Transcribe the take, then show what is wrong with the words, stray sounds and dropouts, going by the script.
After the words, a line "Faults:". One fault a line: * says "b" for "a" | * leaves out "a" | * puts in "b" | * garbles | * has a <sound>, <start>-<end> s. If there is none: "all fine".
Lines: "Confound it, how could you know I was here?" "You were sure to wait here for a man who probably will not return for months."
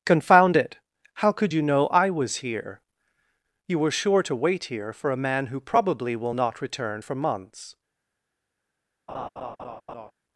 "Confound it, how could you know I was here?" "You were sure to wait here for a man who probably will not return for months."
Faults:
* has a laugh, 9.1-10.1 s